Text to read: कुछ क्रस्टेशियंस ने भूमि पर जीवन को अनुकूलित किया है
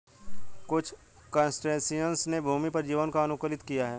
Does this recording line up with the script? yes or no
yes